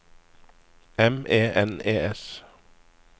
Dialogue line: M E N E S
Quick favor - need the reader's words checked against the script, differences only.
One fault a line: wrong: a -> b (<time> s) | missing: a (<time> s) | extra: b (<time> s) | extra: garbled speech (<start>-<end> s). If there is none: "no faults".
no faults